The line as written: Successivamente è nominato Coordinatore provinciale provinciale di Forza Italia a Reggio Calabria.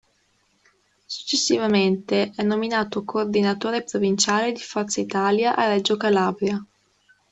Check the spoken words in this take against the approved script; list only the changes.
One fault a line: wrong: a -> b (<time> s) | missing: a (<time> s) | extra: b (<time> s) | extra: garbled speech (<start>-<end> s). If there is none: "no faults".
missing: provinciale (4.5 s)